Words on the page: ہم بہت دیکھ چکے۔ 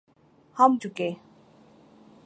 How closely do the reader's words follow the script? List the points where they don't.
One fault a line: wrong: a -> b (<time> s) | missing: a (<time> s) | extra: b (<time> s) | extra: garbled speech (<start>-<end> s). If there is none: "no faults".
missing: بہت دیکھ (0.7 s)